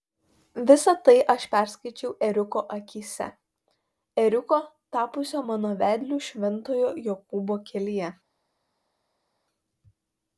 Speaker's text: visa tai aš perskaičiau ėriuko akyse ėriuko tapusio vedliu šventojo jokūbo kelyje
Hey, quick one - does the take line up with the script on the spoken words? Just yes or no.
no